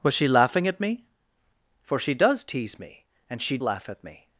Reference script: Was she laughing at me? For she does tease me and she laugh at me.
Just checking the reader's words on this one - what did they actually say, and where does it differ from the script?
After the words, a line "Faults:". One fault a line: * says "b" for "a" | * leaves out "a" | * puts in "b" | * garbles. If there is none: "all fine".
Was she laughing at me? For she does tease me and she laugh at me.
Faults:
all fine